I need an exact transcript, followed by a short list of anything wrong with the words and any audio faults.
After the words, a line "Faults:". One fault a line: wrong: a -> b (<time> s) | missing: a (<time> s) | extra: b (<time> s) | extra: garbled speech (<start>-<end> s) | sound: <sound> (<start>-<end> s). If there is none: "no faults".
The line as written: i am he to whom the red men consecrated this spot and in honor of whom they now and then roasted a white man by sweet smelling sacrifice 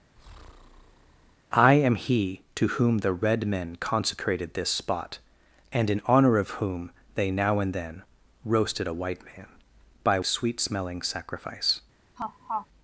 i am he to whom the red men consecrated this spot and in honor of whom they now and then roasted a white man by sweet smelling sacrifice
Faults:
sound: breath (0.2-1.3 s)
sound: laugh (12.2-12.7 s)